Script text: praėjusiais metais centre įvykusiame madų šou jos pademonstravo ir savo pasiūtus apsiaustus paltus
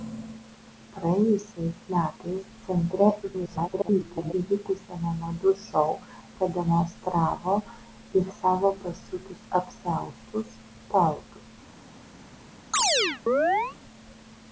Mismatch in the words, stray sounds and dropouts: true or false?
true